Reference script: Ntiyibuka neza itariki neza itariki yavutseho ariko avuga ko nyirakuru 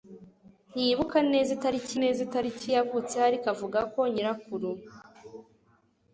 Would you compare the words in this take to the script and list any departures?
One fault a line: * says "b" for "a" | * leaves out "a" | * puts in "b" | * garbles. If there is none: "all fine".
all fine